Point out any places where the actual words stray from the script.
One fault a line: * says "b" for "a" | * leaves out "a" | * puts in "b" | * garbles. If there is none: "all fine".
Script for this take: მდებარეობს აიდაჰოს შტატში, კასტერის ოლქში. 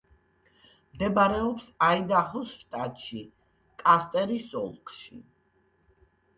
all fine